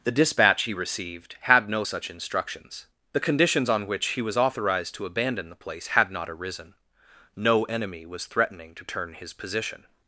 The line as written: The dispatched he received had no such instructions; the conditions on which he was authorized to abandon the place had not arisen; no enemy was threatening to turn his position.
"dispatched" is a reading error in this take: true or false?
true